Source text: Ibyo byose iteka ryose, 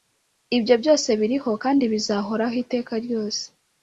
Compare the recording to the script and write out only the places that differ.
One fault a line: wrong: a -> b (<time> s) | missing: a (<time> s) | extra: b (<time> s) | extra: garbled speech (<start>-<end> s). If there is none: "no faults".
extra: biriho kandi bizahoraho (1.2 s)